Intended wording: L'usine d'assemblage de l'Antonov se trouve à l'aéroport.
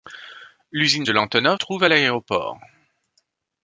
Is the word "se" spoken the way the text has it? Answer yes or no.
no